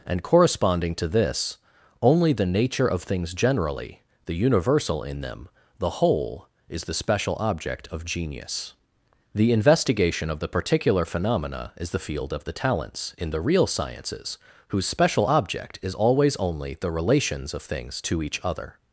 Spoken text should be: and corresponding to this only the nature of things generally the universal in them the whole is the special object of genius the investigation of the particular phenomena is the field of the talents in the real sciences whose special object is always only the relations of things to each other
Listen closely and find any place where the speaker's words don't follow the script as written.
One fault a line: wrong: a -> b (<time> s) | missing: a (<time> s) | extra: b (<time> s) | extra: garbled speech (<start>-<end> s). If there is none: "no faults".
no faults